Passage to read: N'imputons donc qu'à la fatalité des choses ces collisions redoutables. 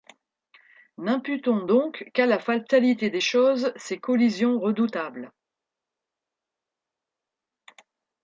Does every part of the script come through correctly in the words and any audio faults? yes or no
yes